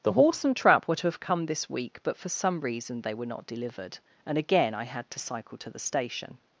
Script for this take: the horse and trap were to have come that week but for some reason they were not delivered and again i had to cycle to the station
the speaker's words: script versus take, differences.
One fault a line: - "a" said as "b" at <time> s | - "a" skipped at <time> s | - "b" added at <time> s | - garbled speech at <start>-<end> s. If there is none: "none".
- "that" said as "this" at 1.4 s